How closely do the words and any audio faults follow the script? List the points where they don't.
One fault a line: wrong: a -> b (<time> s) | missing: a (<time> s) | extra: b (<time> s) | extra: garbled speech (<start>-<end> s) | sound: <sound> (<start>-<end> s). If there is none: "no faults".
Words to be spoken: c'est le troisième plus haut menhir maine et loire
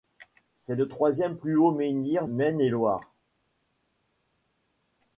no faults